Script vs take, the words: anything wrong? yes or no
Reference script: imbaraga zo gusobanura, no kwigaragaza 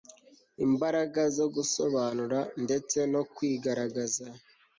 yes